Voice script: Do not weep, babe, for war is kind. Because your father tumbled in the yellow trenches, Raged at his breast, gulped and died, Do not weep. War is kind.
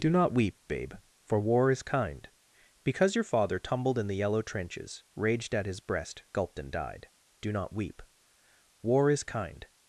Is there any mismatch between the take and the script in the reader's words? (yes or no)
no